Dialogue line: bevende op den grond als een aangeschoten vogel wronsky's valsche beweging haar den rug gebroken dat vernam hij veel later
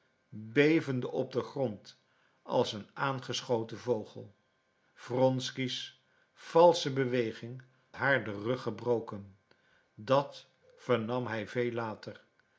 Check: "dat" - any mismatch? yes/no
no